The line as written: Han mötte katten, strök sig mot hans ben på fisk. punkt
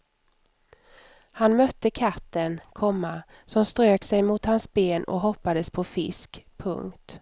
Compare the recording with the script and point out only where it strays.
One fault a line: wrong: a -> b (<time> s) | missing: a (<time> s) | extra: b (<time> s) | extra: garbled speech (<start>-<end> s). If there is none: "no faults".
extra: komma som (2.7 s)
extra: och hoppades (5.0 s)